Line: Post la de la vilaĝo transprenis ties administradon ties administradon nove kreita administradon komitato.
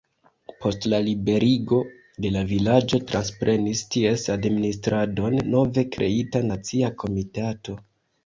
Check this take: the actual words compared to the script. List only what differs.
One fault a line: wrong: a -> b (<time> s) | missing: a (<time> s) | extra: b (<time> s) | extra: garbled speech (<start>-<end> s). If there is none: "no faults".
extra: liberigo (1.1 s)
missing: ties administradon (5.4 s)
wrong: administradon -> nacia (6.5 s)